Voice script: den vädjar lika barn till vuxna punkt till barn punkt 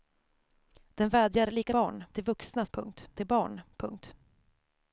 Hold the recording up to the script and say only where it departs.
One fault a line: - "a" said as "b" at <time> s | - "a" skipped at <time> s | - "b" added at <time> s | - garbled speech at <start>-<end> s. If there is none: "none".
none